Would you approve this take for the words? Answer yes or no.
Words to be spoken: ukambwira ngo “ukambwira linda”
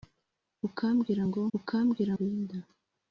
yes